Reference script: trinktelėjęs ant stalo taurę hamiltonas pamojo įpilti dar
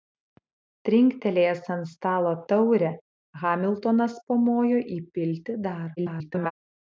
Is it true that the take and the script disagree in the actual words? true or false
true